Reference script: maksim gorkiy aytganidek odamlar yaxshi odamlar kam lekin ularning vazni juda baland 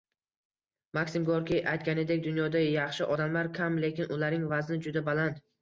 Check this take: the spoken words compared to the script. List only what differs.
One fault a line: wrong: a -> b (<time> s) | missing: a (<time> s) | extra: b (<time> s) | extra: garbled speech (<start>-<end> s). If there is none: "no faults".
wrong: odamlar -> dunyoda (2.3 s)